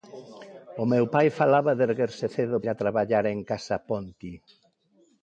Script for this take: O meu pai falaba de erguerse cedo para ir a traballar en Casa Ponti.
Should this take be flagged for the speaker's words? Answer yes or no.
yes